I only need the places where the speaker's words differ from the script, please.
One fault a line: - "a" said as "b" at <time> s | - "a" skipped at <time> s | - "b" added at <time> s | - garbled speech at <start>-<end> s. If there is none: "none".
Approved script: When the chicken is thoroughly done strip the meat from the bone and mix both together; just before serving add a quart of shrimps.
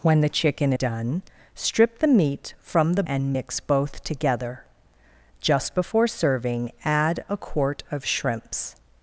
- "is thoroughly" skipped at 0.7 s
- "bone" skipped at 3.0 s